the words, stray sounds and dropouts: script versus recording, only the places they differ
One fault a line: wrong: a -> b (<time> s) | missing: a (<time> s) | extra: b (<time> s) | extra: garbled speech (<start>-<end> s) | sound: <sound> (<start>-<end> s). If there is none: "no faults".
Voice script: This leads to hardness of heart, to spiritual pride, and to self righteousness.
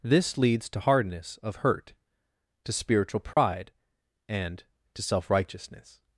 wrong: heart -> hurt (1.6 s)
sound: dropout (3.3-3.4 s)